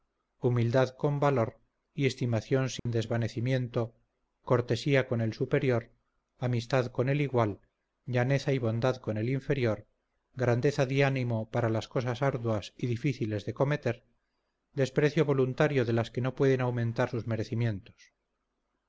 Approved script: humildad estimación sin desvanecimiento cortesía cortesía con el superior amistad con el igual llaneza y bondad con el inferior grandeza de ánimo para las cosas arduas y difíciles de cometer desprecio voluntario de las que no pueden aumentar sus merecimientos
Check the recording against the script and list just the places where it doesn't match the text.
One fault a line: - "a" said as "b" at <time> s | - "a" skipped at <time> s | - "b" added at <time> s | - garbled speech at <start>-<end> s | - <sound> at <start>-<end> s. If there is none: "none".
- "con valor y" added at 0.9 s
- dropout at 2.8-2.9 s
- "cortesía" skipped at 5.1 s